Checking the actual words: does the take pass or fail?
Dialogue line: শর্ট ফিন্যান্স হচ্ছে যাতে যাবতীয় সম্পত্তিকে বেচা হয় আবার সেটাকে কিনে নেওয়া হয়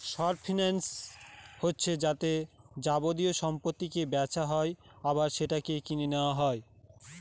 pass